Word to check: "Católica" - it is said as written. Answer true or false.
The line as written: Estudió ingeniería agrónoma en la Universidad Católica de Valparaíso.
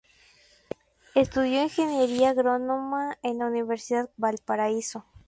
false